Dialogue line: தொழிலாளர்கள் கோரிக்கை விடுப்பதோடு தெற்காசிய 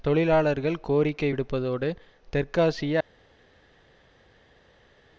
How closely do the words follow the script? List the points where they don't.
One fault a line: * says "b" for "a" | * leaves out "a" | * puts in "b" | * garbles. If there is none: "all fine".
all fine